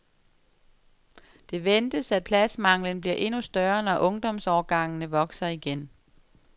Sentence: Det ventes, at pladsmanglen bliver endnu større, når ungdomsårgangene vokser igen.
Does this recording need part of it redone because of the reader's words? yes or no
no